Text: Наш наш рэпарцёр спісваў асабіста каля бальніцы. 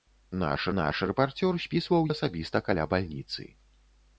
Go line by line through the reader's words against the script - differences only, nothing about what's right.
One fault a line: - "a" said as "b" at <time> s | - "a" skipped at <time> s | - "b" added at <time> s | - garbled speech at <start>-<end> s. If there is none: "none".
none